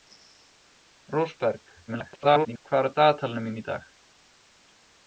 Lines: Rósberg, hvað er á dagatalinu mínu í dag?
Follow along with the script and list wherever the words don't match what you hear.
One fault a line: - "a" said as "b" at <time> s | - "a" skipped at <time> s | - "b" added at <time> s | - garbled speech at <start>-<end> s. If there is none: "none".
- garbled speech at 1.9-2.6 s